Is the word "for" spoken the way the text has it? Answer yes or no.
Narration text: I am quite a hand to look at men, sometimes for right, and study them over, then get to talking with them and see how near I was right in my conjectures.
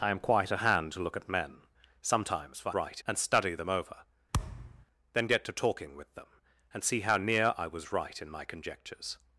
yes